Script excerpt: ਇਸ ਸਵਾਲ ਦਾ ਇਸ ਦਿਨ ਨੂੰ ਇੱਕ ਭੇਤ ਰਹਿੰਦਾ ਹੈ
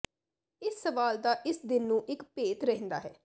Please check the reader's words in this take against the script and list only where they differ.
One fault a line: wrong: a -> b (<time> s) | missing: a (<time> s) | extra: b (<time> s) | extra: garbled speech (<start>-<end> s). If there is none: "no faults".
no faults